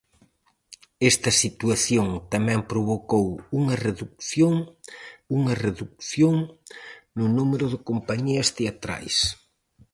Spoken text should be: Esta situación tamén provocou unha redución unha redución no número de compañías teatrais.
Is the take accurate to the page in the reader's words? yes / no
yes